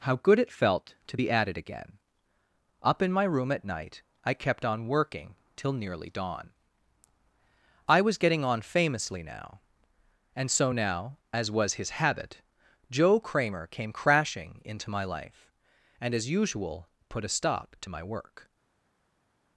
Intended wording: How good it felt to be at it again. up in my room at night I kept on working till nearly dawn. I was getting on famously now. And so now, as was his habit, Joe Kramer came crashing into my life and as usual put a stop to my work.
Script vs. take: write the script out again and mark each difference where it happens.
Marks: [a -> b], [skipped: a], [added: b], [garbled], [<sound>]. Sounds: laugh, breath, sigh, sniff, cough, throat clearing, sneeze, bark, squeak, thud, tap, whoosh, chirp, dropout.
How good it felt to be at it again. up in my room at night I kept on working till nearly dawn. I was getting on famously now. And so now, as was his habit, Joe Kramer came crashing into my life and as usual put a stop to my work.